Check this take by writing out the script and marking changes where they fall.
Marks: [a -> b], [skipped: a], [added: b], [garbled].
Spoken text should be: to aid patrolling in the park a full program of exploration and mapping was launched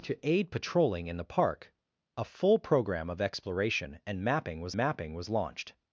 to aid patrolling in the park a full program of exploration and mapping was [added: mapping was] launched